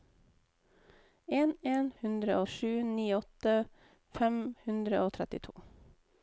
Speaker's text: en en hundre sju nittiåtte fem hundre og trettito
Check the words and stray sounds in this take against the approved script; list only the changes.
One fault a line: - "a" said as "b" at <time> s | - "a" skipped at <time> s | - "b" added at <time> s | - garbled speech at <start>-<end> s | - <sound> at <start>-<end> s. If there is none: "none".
none